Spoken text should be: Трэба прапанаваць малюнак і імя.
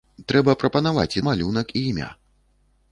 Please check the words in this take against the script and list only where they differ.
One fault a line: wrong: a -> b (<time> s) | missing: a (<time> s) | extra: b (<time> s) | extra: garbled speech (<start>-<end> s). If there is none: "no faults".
no faults